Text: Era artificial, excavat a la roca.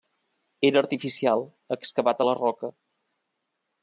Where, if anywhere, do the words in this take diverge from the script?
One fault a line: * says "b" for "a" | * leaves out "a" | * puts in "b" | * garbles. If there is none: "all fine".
all fine